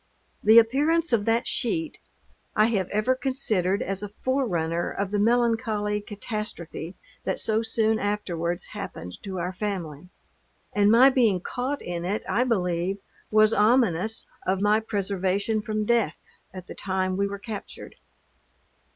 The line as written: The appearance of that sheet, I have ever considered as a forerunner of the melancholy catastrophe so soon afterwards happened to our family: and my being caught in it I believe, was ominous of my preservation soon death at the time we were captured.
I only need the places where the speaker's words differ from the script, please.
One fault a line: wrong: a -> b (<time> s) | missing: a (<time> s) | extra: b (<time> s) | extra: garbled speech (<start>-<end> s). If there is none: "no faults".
extra: that (7.2 s)
wrong: soon -> from (15.6 s)